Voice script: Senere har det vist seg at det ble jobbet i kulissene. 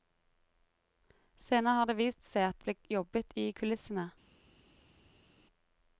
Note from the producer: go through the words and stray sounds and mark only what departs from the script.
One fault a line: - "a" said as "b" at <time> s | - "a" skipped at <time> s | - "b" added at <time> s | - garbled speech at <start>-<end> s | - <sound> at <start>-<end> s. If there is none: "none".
- "det" skipped at 2.6 s